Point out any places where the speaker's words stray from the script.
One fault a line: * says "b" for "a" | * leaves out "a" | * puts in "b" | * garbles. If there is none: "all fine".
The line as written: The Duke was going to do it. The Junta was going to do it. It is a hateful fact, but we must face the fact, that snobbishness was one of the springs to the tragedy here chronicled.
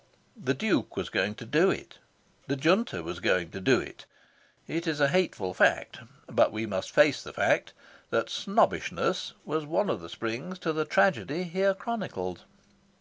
all fine